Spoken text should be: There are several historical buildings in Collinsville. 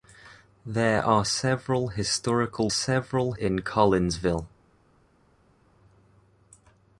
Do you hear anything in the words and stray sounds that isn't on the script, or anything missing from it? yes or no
yes